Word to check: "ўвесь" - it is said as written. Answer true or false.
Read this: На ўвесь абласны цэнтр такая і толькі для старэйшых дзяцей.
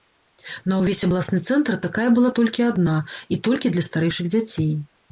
true